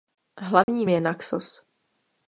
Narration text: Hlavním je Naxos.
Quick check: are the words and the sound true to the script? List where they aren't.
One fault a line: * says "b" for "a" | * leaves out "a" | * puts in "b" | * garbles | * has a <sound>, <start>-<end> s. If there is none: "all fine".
* has a dropout, 0.6-0.7 s